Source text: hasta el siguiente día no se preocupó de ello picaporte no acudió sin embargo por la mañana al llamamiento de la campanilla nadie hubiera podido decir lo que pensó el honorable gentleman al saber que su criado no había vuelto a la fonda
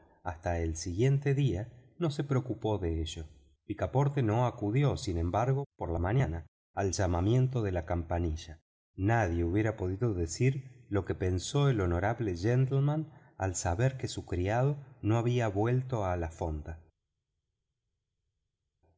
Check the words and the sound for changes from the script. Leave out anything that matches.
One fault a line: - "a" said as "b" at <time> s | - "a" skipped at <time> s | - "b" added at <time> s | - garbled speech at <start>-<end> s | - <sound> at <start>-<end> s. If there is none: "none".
none